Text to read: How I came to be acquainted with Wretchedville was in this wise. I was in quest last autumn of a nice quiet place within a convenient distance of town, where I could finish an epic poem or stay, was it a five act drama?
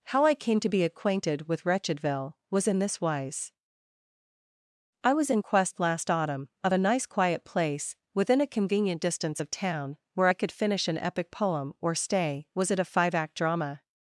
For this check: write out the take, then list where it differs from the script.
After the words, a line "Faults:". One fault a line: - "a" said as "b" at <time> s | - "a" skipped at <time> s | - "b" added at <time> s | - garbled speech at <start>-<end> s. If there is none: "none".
How I came to be acquainted with Wretchedville was in this wise. I was in quest last autumn of a nice quiet place within a convenient distance of town, where I could finish an epic poem or stay, was it a five act drama?
Faults:
none